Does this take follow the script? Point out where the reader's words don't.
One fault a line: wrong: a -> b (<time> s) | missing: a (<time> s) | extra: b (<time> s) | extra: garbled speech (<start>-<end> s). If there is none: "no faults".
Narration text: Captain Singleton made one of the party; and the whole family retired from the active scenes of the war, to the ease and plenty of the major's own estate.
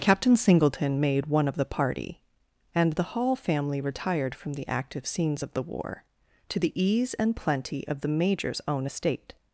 wrong: whole -> hall (3.1 s)